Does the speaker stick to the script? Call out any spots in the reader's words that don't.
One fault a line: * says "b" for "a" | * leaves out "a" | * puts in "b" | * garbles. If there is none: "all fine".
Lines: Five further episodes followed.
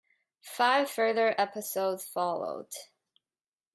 all fine